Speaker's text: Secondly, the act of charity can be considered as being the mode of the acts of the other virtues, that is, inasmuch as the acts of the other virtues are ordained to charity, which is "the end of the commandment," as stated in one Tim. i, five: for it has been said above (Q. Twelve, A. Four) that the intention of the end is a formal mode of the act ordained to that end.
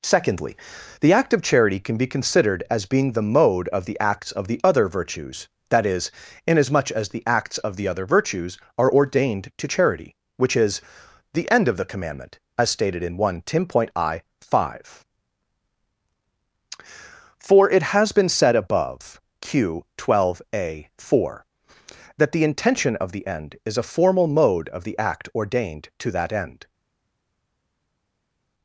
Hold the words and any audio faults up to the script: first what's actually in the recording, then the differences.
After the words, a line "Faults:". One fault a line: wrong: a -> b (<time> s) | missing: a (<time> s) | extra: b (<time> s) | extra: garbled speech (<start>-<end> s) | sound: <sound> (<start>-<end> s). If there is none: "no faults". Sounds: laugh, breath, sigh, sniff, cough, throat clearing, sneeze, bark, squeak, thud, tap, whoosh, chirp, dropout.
Secondly, the act of charity can be considered as being the mode of the acts of the other virtues, that is, inasmuch as the acts of the other virtues are ordained to charity, which is "the end of the commandment," as stated in one Tim. i, five: for it has been said above (Q. Twelve, A. Four) that the intention of the end is a formal mode of the act ordained to that end.
Faults:
no faults